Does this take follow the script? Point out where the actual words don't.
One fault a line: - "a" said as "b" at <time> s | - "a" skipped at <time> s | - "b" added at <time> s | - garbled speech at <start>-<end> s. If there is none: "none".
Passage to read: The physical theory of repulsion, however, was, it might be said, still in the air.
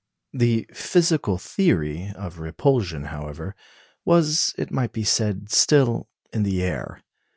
none